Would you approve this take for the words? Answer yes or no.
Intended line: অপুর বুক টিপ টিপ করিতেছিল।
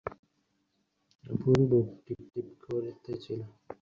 yes